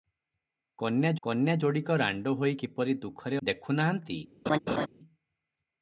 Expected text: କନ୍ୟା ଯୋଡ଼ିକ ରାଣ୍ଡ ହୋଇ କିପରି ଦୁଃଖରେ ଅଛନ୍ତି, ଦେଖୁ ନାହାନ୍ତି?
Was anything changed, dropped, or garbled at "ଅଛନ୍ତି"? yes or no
yes